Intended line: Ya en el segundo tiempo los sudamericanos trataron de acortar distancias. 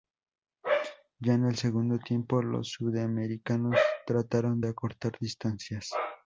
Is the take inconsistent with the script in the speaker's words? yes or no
no